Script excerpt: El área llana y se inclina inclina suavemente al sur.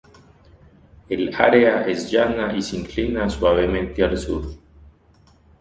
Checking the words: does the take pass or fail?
fail